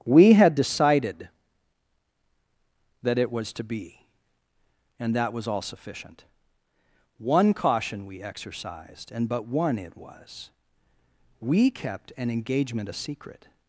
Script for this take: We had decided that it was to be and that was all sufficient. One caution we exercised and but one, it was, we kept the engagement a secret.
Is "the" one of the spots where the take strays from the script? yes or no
yes